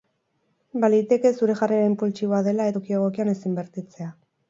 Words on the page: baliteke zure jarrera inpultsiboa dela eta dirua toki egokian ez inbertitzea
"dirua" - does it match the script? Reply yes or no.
no